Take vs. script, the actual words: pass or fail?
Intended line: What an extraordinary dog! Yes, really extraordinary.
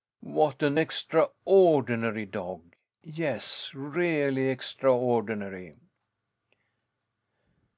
pass